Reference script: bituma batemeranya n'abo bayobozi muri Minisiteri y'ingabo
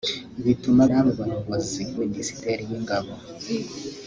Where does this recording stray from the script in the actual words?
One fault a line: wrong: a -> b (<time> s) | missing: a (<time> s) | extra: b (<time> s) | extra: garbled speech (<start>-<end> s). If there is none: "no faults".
missing: batemeranya (0.8 s)
missing: muri (1.8 s)